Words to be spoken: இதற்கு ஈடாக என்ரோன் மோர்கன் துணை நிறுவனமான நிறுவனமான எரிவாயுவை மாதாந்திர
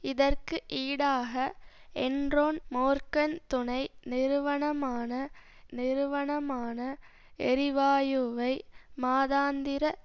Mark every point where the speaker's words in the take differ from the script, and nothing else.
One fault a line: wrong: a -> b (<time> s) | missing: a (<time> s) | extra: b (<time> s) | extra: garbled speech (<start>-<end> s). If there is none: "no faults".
no faults